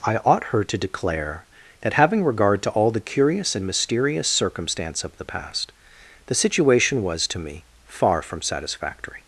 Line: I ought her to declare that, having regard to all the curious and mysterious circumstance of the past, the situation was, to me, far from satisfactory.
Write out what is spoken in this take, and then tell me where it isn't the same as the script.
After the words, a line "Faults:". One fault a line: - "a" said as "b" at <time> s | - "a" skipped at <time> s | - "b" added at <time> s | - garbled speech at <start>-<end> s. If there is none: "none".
I ought her to declare that, having regard to all the curious and mysterious circumstance of the past, the situation was, to me, far from satisfactory.
Faults:
none